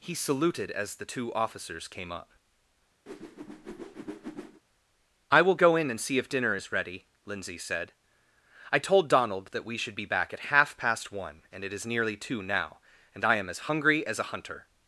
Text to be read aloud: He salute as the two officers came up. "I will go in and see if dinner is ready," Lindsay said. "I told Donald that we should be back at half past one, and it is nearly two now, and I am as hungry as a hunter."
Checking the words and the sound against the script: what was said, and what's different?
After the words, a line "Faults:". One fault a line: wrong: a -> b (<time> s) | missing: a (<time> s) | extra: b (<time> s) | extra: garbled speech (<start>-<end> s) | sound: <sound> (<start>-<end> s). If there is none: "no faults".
He saluted as the two officers came up. "I will go in and see if dinner is ready," Lindsay said. "I told Donald that we should be back at half past one, and it is nearly two now, and I am as hungry as a hunter."
Faults:
wrong: salute -> saluted (0.1 s)
sound: whoosh (3.1-4.6 s)